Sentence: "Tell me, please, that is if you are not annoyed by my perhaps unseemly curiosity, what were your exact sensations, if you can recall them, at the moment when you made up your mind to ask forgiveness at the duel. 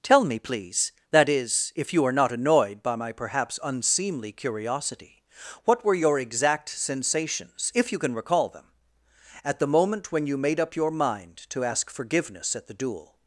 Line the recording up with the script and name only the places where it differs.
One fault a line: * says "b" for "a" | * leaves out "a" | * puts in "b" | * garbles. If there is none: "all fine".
all fine